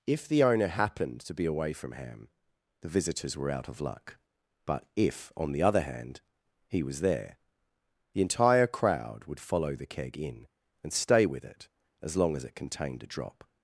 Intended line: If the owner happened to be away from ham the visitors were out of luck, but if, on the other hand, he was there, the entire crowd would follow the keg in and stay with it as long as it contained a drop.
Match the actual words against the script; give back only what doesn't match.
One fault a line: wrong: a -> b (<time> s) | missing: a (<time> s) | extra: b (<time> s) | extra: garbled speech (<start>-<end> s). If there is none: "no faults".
no faults